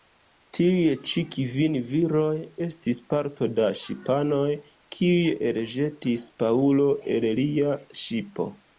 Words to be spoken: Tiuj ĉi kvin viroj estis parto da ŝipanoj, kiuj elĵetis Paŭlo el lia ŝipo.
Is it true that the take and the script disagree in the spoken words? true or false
false